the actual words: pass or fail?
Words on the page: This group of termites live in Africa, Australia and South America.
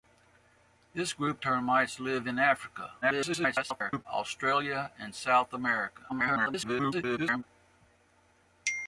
fail